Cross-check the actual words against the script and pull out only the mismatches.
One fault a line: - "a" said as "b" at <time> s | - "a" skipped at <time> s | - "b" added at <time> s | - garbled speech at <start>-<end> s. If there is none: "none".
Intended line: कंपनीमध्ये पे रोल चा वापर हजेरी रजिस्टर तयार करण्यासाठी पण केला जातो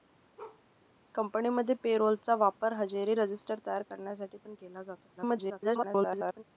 - garbled speech at 5.2-6.4 s